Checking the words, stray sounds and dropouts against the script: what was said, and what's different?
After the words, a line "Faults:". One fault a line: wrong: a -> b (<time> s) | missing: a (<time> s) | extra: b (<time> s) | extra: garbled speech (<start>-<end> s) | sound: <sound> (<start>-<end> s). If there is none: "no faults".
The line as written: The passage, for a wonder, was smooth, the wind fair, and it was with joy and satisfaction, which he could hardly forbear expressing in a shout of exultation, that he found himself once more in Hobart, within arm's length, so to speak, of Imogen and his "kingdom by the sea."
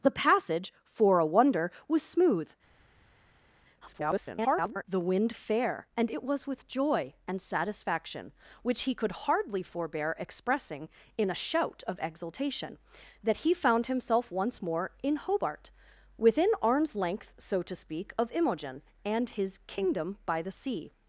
The passage, for a wonder, was smooth, [garbled] the wind fair, and it was with joy and satisfaction, which he could hardly forbear expressing in a shout of exultation, that he found himself once more in Hobart, within arm's length, so to speak, of Imogen and his "kingdom by the sea."
Faults:
extra: garbled speech (3.8-4.8 s)